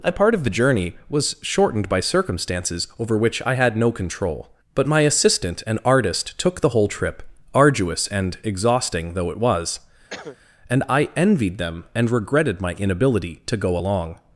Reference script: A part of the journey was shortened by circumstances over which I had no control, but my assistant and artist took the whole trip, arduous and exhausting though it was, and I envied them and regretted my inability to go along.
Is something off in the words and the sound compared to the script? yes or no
yes